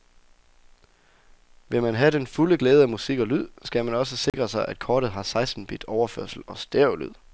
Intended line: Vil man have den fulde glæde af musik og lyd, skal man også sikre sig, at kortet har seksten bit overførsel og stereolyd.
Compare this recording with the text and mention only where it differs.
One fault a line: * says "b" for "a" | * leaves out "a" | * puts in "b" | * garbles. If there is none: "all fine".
all fine